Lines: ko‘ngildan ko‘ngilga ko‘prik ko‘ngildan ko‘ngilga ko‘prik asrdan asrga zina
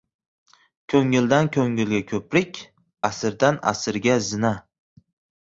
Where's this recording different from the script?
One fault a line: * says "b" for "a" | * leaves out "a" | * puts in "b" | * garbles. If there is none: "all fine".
* leaves out "ko‘ngildan ko‘ngilga ko‘prik"